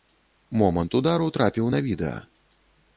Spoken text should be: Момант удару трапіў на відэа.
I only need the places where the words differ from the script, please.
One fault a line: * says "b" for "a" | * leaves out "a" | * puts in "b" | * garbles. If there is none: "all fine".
all fine